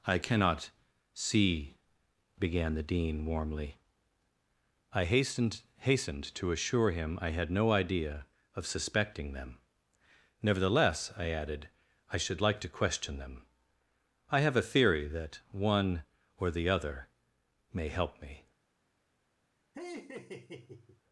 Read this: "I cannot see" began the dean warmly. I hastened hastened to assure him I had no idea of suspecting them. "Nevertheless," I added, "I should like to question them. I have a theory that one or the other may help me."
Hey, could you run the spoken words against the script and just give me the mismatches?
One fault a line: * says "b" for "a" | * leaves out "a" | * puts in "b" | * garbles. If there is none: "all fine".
all fine